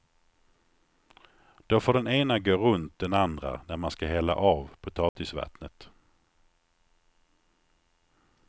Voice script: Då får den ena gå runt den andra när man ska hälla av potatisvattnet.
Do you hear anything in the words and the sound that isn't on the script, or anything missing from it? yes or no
yes